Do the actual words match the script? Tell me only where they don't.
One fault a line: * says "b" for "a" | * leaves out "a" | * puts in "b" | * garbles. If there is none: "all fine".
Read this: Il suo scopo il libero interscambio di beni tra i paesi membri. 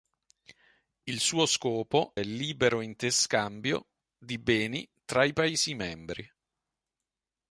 all fine